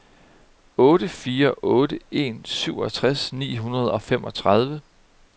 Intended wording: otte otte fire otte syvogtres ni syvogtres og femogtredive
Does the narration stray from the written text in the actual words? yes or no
yes